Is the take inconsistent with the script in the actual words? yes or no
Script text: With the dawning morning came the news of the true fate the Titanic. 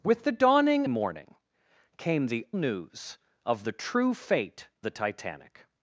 no